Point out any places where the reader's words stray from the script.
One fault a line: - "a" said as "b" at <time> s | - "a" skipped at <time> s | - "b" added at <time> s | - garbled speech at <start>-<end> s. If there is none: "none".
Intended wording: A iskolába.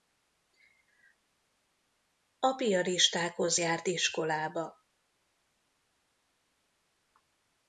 - "piaristákhoz járt" added at 2.6 s